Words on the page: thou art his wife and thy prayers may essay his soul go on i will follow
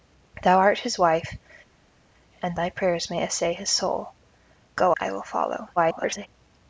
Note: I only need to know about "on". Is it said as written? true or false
false